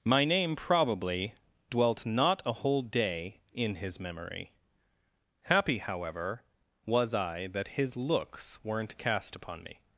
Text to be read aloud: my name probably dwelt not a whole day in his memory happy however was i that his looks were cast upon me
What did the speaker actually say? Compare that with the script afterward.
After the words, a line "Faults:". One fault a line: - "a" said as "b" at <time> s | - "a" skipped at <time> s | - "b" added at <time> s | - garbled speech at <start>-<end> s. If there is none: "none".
my name probably dwelt not a whole day in his memory happy however was i that his looks weren't cast upon me
Faults:
- "were" said as "weren't" at 8.6 s